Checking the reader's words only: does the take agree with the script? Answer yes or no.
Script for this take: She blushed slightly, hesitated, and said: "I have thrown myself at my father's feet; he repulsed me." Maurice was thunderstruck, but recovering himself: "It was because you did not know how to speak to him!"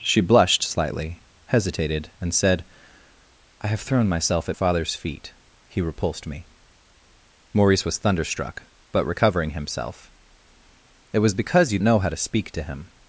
no